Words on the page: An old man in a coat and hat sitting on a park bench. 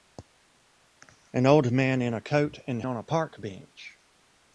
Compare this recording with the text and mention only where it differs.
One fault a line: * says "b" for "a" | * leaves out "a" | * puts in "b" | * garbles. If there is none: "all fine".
* leaves out "hat sitting"